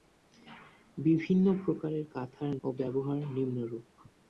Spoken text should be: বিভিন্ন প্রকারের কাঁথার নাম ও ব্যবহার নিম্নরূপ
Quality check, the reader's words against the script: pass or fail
fail